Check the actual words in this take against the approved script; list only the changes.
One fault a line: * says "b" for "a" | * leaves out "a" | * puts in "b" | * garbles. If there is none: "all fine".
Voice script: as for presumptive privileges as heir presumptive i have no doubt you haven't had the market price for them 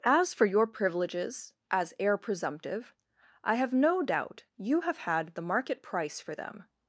* says "your" for "presumptive"
* says "have" for "haven't"